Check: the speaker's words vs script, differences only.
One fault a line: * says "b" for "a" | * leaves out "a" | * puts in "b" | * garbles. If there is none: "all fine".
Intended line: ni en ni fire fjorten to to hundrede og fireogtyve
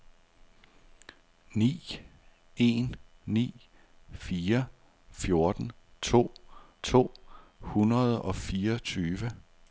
all fine